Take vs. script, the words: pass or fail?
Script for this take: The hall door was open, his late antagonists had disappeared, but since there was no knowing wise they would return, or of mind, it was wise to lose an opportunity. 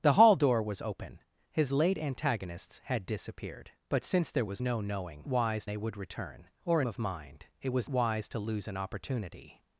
pass